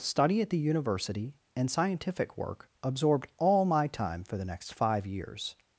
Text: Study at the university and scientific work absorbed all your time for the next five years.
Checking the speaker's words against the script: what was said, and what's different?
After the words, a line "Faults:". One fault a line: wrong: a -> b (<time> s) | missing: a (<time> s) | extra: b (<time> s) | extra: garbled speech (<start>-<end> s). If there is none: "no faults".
Study at the university and scientific work absorbed all my time for the next five years.
Faults:
wrong: your -> my (3.6 s)